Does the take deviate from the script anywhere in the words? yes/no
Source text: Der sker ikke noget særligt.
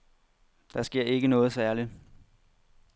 no